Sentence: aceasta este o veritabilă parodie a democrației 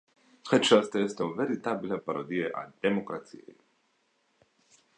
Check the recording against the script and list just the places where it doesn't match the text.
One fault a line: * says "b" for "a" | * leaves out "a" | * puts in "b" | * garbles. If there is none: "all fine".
all fine